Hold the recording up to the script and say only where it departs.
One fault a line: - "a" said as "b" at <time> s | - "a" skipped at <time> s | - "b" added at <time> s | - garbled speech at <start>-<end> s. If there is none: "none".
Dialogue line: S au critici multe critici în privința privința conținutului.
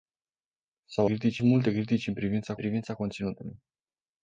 none